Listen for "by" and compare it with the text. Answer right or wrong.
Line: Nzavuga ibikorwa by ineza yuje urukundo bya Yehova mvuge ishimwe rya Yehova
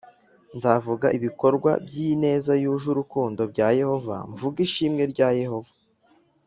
right